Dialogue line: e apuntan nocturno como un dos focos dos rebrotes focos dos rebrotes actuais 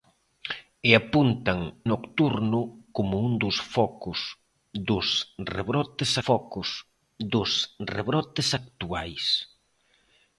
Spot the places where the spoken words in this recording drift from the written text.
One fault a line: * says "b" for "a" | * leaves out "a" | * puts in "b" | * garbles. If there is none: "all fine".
all fine